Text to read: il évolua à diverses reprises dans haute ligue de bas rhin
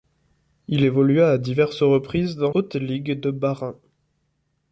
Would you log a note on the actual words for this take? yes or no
no